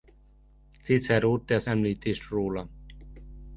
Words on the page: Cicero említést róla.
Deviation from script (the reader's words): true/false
true